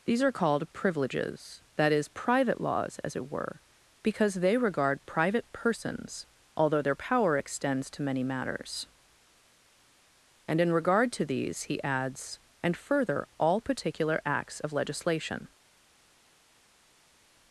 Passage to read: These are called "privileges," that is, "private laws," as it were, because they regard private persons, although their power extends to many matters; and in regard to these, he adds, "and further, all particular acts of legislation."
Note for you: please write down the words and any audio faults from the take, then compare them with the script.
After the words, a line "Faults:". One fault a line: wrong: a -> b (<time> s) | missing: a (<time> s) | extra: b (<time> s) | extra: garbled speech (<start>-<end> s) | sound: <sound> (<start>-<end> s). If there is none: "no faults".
These are called "privileges," that is, "private laws," as it were, because they regard private persons, although their power extends to many matters; and in regard to these, he adds, "and further, all particular acts of legislation."
Faults:
no faults